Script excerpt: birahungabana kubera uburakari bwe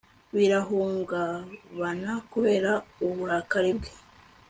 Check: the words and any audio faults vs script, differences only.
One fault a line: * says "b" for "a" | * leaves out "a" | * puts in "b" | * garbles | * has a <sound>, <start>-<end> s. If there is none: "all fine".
all fine